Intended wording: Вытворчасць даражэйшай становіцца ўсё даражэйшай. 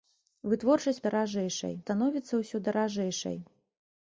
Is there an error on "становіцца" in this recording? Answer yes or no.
no